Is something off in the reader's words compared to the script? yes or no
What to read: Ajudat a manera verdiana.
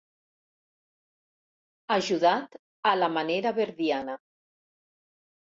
yes